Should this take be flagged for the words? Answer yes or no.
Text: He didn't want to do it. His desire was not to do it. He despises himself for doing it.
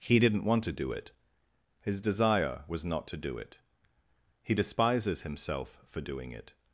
no